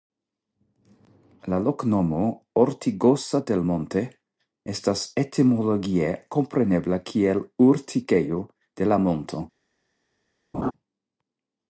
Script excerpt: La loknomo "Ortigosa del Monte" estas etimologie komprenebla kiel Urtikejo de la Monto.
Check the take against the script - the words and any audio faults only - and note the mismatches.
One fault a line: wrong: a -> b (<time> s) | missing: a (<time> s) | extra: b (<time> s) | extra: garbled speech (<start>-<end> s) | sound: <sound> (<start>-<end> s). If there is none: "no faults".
sound: laugh (10.5-10.7 s)